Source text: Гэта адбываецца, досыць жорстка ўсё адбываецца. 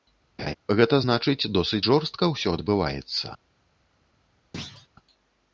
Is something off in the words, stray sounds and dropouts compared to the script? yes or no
yes